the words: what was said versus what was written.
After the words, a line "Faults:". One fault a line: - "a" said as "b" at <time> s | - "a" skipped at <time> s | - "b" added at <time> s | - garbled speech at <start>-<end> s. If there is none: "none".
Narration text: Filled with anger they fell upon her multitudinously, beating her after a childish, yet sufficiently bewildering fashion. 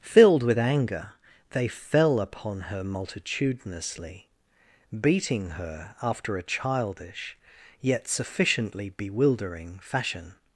Filled with anger they fell upon her multitudinously, beating her after a childish, yet sufficiently bewildering fashion.
Faults:
none